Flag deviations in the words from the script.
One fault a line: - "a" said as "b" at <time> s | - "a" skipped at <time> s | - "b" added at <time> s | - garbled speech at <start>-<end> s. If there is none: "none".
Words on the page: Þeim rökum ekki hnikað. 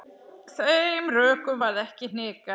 - "varð" added at 1.6 s